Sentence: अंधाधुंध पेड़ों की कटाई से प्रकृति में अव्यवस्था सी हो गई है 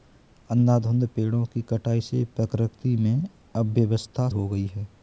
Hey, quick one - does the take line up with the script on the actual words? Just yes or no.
no